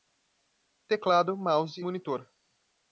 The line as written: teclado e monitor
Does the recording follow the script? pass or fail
fail